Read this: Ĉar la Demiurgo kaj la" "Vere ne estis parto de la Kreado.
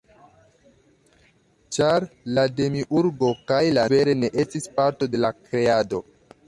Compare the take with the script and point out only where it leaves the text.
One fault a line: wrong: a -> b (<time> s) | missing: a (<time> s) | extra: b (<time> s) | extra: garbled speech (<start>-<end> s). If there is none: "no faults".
no faults